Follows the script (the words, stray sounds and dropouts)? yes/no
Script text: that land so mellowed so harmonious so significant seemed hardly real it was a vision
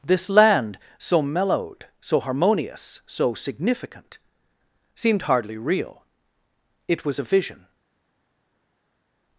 no